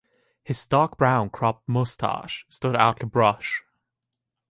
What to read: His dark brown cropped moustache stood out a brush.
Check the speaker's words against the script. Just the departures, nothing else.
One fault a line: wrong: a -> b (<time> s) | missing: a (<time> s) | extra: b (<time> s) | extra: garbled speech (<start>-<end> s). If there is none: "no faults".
no faults